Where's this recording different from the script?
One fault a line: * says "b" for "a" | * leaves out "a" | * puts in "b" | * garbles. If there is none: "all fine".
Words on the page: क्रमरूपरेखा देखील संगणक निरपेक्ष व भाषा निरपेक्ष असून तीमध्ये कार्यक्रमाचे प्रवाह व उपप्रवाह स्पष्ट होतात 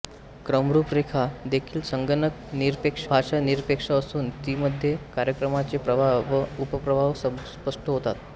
* leaves out "व"